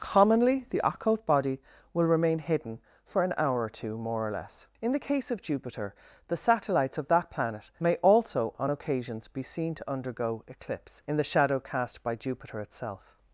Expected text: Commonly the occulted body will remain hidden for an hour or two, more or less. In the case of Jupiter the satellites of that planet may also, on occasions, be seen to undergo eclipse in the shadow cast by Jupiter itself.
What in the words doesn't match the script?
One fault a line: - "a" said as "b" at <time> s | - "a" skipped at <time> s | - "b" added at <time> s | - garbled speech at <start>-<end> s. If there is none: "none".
- "occulted" said as "occult" at 0.8 s